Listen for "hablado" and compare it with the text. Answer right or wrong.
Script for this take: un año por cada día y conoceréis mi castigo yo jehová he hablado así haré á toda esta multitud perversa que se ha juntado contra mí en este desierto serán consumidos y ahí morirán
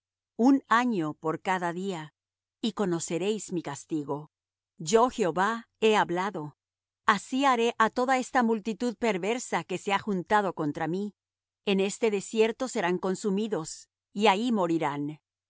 right